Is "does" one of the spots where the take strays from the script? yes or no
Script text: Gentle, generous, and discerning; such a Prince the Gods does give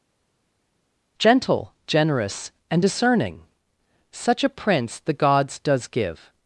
no